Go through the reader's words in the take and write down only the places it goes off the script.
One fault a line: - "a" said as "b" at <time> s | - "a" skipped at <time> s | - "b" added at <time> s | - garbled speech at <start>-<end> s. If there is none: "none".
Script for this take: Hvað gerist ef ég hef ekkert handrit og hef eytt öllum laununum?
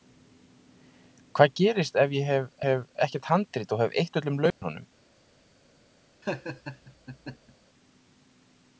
- "hef" added at 2.7 s